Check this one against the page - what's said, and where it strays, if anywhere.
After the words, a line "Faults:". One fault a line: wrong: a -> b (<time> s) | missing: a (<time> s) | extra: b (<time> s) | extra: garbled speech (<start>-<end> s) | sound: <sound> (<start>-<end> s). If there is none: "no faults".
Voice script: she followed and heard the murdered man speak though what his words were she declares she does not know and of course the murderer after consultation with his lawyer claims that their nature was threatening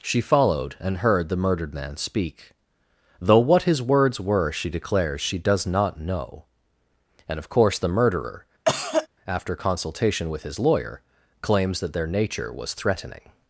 she followed and heard the murdered man speak though what his words were she declares she does not know and of course the murderer after consultation with his lawyer claims that their nature was threatening
Faults:
sound: cough (8.7-9.1 s)